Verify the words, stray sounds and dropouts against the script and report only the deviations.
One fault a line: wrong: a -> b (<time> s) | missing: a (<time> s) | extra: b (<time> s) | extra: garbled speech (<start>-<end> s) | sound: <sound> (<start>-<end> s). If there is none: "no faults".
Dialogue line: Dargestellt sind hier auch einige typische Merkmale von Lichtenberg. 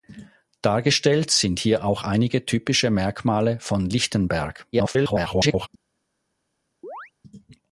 extra: garbled speech (4.7-5.7 s)
sound: chirp (6.8-7.1 s)